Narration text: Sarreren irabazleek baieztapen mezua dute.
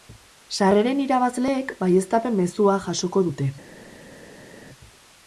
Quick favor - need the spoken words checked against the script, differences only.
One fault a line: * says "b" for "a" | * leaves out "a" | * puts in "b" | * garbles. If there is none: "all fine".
* puts in "jasoko"